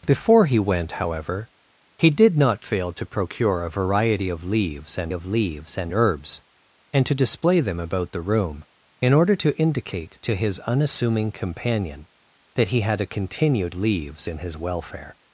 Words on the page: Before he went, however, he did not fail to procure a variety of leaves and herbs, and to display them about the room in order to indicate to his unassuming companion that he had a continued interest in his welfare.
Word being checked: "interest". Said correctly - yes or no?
no